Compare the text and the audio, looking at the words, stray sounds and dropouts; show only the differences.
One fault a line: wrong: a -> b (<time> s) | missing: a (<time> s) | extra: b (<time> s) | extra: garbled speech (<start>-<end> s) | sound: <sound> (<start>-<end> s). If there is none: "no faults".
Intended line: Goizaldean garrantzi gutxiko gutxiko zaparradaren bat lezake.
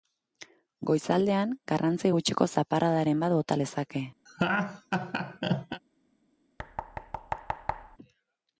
missing: gutxiko (2.5 s)
extra: bota (3.4 s)
sound: laugh (4.3-5.8 s)
sound: thud (6.6-8.0 s)